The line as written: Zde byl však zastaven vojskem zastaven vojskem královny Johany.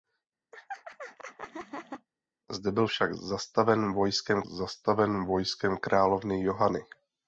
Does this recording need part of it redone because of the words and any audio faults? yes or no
yes